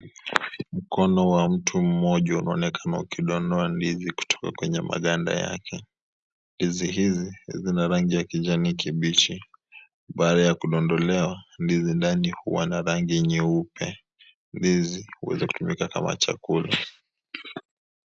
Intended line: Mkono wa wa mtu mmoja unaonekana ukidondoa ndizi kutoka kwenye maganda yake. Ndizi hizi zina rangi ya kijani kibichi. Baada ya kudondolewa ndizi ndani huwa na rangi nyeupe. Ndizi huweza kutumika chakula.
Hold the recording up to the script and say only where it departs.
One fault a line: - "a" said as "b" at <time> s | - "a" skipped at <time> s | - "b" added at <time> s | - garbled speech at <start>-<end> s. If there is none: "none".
- "wa" skipped at 1.5 s
- "kama" added at 15.9 s